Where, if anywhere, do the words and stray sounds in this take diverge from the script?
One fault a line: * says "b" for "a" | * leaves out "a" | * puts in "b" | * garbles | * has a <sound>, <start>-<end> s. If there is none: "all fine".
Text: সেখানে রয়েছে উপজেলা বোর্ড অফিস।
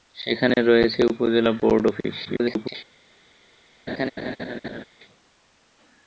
* garbles
* has a laugh, 3.9-4.8 s